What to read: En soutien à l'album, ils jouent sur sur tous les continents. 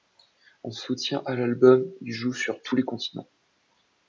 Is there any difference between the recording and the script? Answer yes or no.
yes